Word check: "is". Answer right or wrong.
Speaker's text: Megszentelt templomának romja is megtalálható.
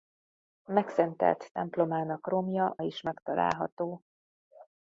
right